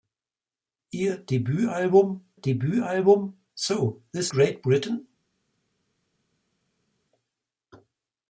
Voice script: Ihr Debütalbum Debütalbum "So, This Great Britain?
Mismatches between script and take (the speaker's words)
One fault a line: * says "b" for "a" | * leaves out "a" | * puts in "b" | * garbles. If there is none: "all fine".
all fine